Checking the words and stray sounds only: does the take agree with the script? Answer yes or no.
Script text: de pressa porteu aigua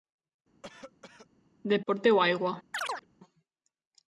no